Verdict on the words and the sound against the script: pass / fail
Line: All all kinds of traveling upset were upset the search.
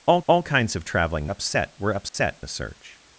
fail